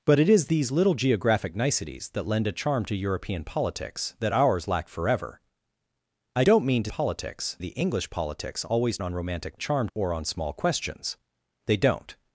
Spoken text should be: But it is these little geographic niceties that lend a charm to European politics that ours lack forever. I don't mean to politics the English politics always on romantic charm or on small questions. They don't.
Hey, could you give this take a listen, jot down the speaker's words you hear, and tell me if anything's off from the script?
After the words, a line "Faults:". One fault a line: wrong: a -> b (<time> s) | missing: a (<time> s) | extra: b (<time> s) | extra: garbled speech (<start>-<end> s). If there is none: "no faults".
But it is these little geographic niceties that lend a charm to European politics that ours lack forever. I don't mean to politics the English politics always on romantic charm or on small questions. They don't.
Faults:
no faults